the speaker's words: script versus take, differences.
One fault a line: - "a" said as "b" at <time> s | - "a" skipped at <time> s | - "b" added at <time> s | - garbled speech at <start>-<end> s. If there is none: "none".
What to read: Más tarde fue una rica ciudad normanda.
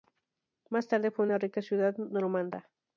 none